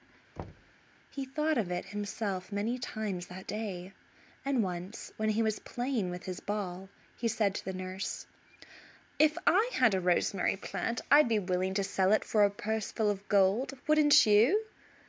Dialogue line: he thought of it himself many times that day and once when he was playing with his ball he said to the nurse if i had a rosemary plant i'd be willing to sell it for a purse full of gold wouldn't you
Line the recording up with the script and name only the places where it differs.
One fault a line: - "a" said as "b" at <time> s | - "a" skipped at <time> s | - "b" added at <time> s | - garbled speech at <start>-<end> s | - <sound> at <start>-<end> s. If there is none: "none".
- thud at 0.4-0.7 s